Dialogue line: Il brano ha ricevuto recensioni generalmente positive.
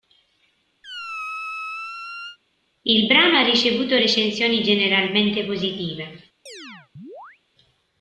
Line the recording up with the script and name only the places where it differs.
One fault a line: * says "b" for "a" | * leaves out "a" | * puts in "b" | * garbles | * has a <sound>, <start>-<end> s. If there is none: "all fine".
* has a squeak, 0.8-2.4 s
* has a chirp, 6.5-7.4 s